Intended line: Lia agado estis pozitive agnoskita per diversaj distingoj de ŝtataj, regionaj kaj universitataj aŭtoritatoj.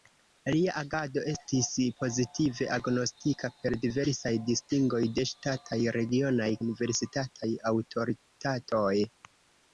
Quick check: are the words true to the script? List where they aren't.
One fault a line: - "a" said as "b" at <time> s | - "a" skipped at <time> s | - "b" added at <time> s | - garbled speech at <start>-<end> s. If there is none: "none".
- "kaj" skipped at 6.5 s